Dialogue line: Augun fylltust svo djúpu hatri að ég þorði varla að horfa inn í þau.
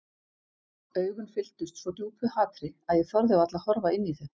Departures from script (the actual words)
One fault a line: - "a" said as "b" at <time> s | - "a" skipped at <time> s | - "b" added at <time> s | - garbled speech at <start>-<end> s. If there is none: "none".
none